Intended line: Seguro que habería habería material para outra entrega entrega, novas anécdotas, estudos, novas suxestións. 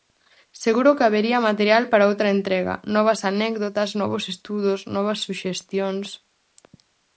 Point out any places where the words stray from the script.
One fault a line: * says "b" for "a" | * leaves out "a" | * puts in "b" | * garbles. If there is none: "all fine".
* leaves out "habería"
* leaves out "entrega"
* puts in "novos"